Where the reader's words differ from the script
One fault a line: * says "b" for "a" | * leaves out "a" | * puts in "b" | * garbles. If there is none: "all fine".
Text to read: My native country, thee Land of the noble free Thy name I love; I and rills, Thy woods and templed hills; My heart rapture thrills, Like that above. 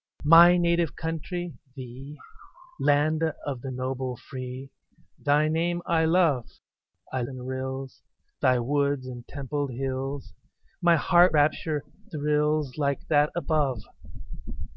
all fine